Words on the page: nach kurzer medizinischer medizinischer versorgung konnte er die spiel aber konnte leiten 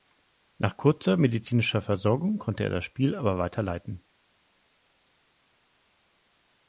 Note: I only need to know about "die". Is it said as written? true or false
false